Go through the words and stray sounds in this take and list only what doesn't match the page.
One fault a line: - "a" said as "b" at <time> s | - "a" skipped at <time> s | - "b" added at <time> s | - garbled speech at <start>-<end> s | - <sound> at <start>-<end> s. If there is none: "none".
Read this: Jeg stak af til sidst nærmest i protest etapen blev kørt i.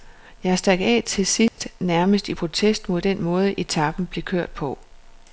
- dropout at 1.5-1.6 s
- "mod den måde" added at 2.9 s
- "i" said as "på" at 4.5 s